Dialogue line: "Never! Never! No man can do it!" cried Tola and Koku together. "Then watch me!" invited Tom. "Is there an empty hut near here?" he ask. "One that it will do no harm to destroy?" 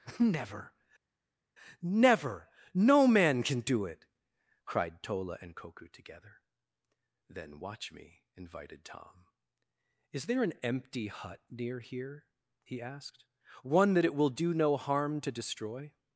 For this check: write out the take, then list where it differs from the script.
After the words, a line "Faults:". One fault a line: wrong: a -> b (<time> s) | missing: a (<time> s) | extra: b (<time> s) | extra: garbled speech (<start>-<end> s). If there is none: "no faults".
"Never! Never! No man can do it!" cried Tola and Koku together. "Then watch me!" invited Tom. "Is there an empty hut near here?" he asked. "One that it will do no harm to destroy?"
Faults:
wrong: ask -> asked (12.8 s)